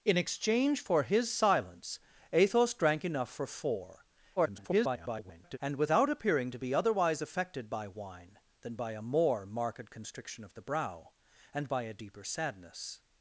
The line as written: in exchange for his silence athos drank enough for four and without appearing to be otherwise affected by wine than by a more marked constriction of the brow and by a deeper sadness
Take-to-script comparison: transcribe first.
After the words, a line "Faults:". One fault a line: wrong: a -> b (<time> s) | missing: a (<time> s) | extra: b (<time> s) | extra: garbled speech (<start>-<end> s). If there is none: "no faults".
in exchange for his silence athos drank enough for four [garbled] and without appearing to be otherwise affected by wine than by a more marked constriction of the brow and by a deeper sadness
Faults:
extra: garbled speech (4.4-5.6 s)